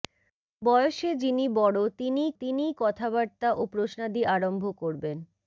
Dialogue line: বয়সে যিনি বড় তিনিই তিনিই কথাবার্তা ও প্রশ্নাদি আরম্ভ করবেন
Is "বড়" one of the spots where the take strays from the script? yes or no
no